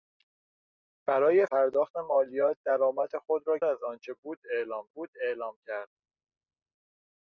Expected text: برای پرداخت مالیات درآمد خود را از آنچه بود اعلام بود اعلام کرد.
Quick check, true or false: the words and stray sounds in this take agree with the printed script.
true